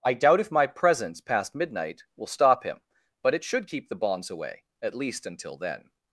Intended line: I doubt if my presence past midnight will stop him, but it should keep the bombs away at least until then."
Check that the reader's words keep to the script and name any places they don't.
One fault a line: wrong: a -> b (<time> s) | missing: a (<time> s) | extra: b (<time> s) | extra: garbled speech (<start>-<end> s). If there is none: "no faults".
wrong: bombs -> bonds (3.9 s)